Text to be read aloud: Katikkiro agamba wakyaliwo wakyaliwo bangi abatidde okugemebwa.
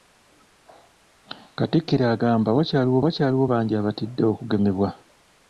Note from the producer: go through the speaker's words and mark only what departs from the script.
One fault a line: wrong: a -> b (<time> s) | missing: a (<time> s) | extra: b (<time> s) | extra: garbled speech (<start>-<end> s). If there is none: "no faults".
no faults